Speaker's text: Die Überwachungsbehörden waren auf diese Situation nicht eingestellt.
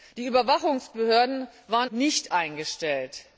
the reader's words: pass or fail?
fail